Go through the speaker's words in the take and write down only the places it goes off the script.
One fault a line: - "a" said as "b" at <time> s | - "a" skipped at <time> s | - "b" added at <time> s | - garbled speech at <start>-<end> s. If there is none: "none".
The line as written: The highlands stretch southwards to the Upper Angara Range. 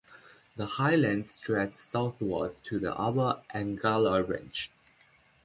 none